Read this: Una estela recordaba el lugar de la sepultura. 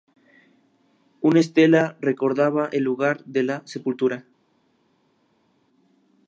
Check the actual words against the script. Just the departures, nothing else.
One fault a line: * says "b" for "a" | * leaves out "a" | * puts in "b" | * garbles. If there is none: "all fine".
all fine